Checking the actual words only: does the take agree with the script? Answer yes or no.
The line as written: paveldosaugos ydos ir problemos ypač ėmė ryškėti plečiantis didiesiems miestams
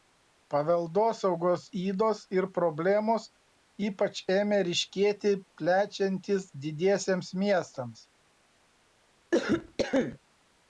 yes